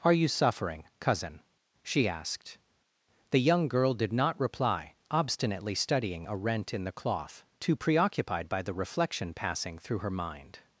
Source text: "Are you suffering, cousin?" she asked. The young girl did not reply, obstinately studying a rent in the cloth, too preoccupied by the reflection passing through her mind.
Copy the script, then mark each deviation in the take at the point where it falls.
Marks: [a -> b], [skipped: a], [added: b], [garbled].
"Are you suffering, cousin?" she asked. The young girl did not reply, obstinately studying a rent in the cloth, too preoccupied by the reflection passing through her mind.